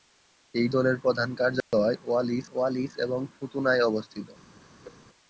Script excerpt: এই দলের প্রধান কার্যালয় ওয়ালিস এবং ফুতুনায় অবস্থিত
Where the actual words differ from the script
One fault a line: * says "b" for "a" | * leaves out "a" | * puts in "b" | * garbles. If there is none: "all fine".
* puts in "ওয়ালিস"